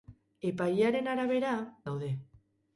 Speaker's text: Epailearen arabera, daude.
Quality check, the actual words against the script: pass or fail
pass